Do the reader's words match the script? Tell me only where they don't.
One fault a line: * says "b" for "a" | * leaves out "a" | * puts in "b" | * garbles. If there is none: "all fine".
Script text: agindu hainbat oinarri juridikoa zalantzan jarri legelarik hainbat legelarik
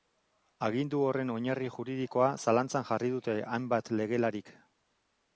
* says "horren" for "hainbat"
* says "dute" for "legelarik"